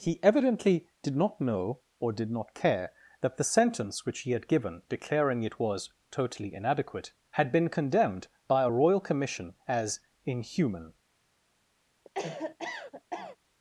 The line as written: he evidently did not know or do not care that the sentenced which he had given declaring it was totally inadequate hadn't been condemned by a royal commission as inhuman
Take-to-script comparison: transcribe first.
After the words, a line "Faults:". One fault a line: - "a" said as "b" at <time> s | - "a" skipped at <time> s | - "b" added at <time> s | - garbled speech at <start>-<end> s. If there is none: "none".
he evidently did not know or did not care that the sentence which he had given declaring it was totally inadequate had been condemned by a royal commission as inhuman
Faults:
- "do" said as "did" at 2.1 s
- "sentenced" said as "sentence" at 3.4 s
- "hadn't" said as "had" at 7.3 s